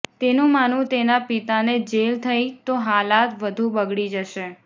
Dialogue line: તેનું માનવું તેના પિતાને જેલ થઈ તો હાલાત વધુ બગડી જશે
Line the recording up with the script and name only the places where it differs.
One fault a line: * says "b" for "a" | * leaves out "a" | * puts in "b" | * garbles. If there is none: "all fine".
all fine